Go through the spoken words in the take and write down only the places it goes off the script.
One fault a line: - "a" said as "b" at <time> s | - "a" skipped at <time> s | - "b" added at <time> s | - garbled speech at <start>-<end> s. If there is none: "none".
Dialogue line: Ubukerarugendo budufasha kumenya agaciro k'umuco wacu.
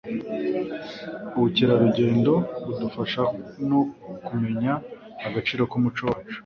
- "no" added at 3.7 s